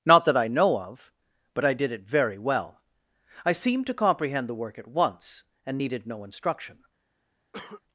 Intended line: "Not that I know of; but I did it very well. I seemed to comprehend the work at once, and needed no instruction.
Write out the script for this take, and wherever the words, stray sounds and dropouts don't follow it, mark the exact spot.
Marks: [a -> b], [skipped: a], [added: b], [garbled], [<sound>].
"Not that I know of; but I did it very well. I seemed to comprehend the work at once, and needed no instruction. [cough]